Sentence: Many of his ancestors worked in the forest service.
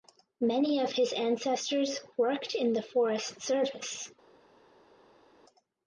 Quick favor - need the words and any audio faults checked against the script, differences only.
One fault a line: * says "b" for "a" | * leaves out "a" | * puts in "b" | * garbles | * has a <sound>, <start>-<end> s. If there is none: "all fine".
all fine